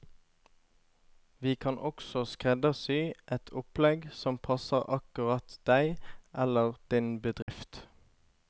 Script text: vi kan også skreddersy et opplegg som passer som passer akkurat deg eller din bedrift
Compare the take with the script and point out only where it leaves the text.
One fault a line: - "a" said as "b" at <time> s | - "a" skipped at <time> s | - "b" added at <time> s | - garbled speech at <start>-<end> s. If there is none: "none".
- "som passer" skipped at 4.9 s